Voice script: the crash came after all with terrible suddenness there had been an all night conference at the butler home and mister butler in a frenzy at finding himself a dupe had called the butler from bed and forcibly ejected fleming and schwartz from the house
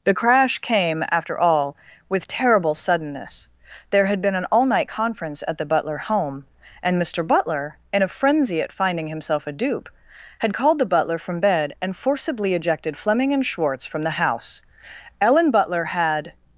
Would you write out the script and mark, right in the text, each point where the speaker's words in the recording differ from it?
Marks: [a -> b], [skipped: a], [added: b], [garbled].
the crash came after all with terrible suddenness there had been an all night conference at the butler home and mister butler in a frenzy at finding himself a dupe had called the butler from bed and forcibly ejected fleming and schwartz from the house [added: ellen butler had]